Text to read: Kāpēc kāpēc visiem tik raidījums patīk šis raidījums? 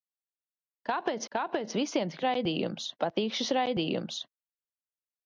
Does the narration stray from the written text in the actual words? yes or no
no